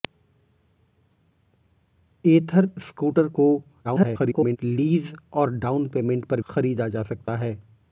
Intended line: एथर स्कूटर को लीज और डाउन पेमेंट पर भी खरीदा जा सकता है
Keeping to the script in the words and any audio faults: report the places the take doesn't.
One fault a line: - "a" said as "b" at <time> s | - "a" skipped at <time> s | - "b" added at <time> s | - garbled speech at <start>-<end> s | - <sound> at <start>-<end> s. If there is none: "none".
- garbled speech at 3.8-4.6 s
- "भी" skipped at 6.4 s
- dropout at 7.2-7.3 s